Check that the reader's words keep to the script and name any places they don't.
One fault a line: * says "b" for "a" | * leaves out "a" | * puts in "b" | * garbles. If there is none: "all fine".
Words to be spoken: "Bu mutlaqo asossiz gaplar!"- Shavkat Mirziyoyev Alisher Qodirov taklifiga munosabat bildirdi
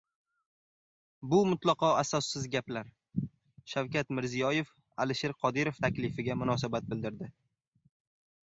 all fine